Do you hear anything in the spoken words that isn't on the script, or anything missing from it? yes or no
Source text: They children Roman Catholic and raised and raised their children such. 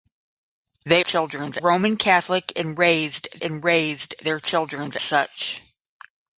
no